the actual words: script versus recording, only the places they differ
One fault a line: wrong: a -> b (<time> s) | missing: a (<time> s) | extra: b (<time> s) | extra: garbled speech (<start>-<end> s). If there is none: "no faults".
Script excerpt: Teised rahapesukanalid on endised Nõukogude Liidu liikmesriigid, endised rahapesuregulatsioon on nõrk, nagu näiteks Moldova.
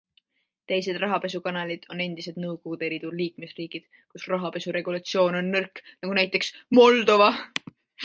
wrong: endised -> kus (4.1 s)